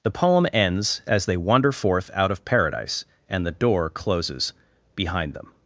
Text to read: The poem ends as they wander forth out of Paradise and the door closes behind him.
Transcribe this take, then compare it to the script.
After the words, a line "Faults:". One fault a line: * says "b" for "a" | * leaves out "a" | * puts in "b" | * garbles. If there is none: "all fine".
The poem ends as they wander forth out of Paradise and the door closes behind them.
Faults:
* says "them" for "him"